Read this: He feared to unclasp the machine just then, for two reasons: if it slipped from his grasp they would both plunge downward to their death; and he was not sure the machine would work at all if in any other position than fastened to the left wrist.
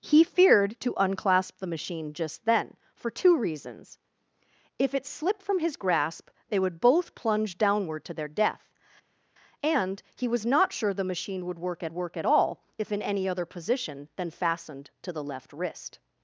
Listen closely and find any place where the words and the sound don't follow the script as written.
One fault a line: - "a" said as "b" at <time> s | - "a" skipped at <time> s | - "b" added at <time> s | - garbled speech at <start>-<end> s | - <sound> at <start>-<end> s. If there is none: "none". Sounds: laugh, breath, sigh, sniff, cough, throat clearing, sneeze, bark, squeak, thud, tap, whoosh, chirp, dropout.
- "work at" added at 11.9 s